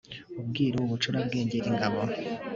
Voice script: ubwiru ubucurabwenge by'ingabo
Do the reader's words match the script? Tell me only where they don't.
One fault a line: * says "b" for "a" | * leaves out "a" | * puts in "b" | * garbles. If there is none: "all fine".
all fine